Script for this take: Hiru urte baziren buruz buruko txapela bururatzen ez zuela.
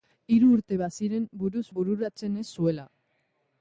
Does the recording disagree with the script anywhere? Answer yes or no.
yes